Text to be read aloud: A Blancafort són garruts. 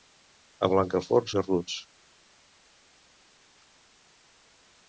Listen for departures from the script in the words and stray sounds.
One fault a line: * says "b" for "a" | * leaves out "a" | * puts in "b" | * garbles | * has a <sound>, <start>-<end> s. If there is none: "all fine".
* leaves out "són"